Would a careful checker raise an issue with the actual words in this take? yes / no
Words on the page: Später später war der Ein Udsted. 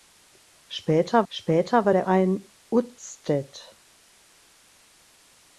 no